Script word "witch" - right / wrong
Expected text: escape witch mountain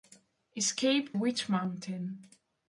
right